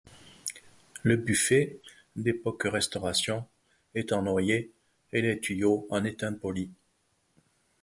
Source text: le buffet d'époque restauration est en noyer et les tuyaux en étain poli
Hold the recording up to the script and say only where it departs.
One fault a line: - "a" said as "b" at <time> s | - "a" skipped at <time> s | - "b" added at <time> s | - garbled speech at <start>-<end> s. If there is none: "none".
none